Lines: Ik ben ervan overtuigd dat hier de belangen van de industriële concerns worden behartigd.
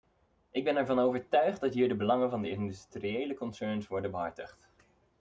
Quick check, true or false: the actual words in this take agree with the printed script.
true